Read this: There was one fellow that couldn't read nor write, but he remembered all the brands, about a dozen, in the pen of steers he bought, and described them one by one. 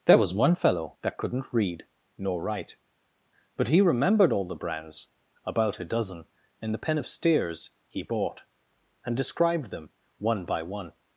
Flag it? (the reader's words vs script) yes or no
no